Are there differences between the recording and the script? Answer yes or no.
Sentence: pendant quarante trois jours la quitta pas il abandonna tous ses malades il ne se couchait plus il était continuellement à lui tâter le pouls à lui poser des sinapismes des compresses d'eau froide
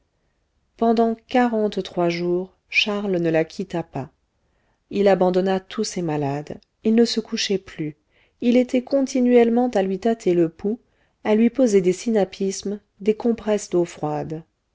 yes